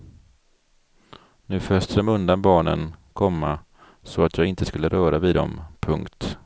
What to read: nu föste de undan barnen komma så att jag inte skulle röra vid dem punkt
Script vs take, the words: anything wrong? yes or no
no